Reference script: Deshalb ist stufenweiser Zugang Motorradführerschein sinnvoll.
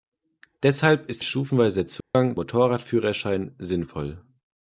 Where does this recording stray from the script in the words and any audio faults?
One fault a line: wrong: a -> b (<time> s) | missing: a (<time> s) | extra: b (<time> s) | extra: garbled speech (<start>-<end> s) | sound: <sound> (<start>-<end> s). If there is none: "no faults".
sound: dropout (2.0-2.1 s)